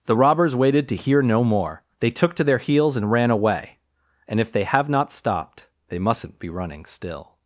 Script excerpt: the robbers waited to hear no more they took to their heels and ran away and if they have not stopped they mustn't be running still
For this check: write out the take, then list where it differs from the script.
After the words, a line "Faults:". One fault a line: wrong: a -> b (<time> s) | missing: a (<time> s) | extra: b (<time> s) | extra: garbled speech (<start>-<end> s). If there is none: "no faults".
the robbers waited to hear no more they took to their heels and ran away and if they have not stopped they mustn't be running still
Faults:
no faults